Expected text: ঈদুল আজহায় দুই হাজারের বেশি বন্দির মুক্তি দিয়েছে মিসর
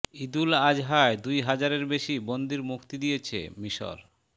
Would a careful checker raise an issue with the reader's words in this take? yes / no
no